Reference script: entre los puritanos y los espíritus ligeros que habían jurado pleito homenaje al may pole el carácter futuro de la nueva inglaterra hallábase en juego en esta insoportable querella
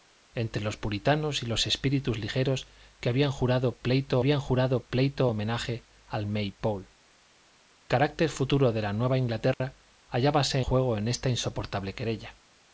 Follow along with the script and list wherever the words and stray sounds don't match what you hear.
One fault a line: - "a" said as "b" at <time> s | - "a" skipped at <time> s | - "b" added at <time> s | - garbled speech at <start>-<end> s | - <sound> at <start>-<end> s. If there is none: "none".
- "habían jurado pleito" added at 4.2 s
- "el" skipped at 6.9 s
- dropout at 9.5-9.6 s
- "en" skipped at 10.6 s